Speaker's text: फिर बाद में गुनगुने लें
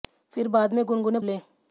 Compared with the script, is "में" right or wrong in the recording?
right